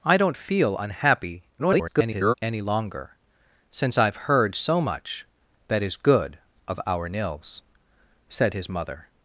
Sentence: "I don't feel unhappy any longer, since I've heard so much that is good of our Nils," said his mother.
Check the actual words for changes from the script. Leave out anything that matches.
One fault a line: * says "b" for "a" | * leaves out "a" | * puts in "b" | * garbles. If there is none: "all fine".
* garbles